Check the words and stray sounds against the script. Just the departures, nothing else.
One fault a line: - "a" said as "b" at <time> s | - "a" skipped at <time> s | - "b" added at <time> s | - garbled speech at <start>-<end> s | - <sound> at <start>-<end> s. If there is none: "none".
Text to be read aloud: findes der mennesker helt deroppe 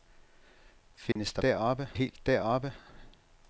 - dropout at 1.1-1.2 s
- "mennesker" said as "deroppe" at 1.4 s